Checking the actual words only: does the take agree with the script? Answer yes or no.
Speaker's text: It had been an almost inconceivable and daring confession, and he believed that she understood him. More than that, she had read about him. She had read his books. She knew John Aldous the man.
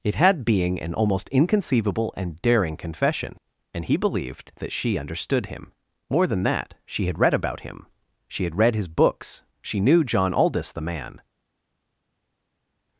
no